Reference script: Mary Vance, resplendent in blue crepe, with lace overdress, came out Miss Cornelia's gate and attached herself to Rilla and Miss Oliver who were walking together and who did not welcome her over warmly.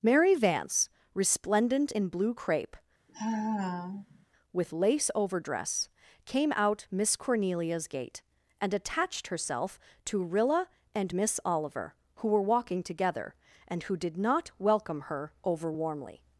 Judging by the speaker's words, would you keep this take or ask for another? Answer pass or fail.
pass